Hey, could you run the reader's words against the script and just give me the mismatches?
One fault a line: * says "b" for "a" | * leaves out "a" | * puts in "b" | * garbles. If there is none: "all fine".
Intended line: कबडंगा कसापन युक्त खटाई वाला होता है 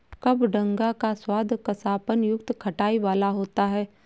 * puts in "का स्वाद"